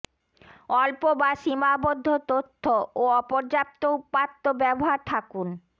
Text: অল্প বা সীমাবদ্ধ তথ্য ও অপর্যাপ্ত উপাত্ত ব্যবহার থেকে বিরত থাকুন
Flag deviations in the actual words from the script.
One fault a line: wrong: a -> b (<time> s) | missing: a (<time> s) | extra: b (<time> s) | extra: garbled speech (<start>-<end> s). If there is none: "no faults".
missing: থেকে বিরত (5.0 s)